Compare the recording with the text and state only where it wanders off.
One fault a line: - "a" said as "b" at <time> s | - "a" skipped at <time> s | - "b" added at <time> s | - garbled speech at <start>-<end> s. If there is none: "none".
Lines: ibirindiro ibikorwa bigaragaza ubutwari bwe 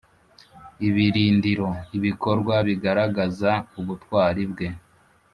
none